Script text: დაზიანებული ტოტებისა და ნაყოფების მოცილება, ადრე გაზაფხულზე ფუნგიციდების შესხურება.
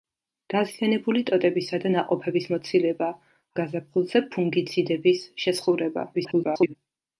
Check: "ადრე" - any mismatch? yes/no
yes